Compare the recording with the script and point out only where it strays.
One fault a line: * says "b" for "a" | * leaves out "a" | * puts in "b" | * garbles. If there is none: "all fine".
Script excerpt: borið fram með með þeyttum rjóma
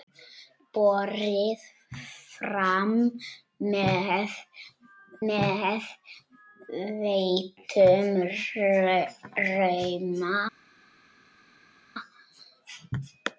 all fine